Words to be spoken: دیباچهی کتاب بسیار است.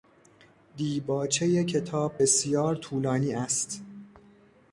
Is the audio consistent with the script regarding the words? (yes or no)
no